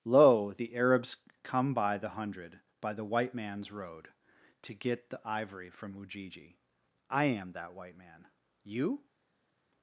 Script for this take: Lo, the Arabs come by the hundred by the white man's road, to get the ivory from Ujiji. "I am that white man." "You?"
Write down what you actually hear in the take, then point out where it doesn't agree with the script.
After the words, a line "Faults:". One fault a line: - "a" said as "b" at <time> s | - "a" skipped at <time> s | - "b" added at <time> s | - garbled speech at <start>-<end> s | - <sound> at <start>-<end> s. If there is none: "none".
Lo, the Arabs come by the hundred by the white man's road, to get the ivory from Ujiji. "I am that white man." "You?"
Faults:
none